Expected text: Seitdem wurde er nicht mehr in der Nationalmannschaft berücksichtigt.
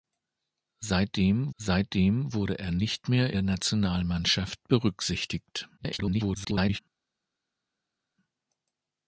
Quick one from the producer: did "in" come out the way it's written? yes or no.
no